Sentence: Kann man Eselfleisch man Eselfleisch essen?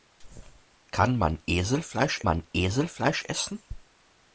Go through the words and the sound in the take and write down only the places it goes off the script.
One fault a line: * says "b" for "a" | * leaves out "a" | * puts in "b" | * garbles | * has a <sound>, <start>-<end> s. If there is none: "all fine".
all fine